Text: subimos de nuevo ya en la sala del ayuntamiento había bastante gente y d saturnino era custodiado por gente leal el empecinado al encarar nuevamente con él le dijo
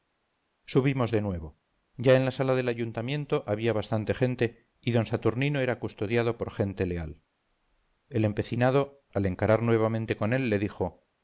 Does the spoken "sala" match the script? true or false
true